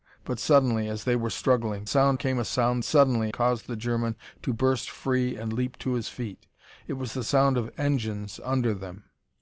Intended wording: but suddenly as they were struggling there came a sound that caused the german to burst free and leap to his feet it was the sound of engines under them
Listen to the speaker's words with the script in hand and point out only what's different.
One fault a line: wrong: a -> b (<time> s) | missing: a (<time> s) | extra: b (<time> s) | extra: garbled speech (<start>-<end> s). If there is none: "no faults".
wrong: there -> sound (1.9 s)
wrong: that -> suddenly (2.8 s)